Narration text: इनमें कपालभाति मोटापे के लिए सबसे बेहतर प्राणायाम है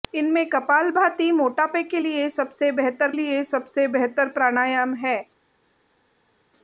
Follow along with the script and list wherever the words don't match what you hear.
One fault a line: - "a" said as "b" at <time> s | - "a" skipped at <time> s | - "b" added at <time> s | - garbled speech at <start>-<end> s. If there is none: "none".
- "लिए सबसे बेहतर" added at 3.1 s